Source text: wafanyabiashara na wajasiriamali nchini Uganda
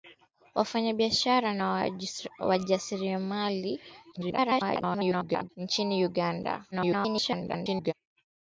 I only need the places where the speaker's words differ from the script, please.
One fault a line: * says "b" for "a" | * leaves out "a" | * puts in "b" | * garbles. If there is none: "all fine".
* garbles
* garbles